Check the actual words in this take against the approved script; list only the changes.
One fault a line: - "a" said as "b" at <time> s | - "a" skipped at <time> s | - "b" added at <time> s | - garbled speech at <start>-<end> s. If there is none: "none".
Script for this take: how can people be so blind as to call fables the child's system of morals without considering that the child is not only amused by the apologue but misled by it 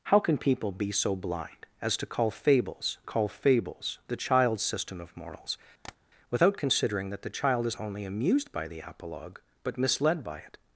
- "call fables" added at 3.0 s
- "not" skipped at 7.8 s